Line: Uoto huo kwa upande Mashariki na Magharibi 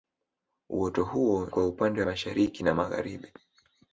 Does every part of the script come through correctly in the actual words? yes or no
yes